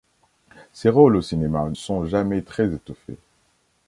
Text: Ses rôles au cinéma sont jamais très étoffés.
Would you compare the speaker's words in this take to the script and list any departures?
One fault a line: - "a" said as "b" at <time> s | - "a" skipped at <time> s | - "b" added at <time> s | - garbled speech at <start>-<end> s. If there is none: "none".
none